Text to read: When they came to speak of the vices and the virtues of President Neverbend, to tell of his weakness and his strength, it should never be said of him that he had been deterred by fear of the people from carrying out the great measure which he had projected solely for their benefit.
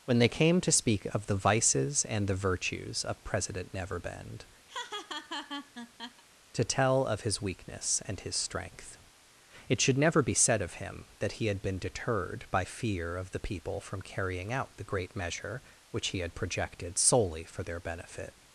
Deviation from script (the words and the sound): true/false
true